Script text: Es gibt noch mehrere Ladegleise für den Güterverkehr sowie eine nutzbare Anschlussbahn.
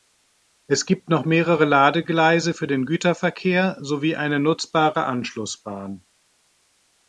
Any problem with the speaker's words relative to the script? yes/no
no